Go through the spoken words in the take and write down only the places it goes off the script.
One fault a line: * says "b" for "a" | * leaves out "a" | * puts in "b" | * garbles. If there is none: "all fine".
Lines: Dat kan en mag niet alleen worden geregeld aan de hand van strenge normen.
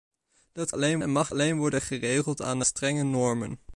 * says "alleen" for "kan"
* leaves out "niet"
* leaves out "hand van"